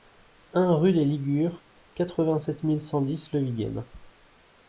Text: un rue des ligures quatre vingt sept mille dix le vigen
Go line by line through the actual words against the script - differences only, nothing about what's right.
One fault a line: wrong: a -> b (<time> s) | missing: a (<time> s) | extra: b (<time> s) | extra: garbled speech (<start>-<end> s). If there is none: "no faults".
extra: cent (2.8 s)